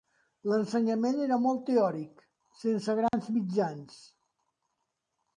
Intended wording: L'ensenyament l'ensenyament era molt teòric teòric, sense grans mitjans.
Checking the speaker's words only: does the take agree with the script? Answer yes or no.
no